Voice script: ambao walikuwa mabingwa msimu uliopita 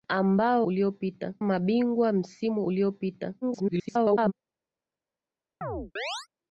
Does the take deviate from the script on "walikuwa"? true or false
true